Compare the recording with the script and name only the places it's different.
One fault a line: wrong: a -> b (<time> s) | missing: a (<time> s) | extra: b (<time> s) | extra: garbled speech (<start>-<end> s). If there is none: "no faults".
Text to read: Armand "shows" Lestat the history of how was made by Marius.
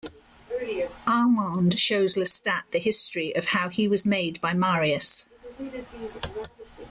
extra: he (3.7 s)